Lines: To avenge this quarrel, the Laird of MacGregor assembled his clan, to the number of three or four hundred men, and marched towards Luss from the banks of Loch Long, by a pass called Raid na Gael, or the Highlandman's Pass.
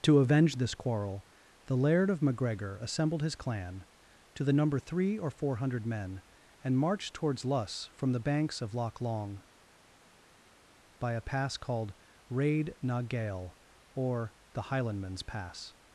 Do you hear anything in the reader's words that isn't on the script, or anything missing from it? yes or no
yes